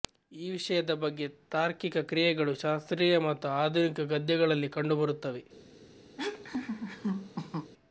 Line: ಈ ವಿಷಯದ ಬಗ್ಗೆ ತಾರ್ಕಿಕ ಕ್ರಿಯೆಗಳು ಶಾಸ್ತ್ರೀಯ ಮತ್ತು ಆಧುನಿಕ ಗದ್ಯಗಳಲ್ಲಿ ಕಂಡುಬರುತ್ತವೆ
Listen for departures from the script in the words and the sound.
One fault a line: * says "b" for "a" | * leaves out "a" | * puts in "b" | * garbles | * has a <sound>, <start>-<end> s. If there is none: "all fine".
* has a laugh, 6.2-7.7 s